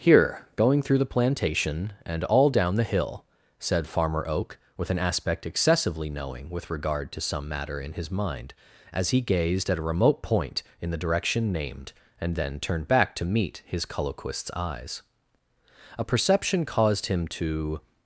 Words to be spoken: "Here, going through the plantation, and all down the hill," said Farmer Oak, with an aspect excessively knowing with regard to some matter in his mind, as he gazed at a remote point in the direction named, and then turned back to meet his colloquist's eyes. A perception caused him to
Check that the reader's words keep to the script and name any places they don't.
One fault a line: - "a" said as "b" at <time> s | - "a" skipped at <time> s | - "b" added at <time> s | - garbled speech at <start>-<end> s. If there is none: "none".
none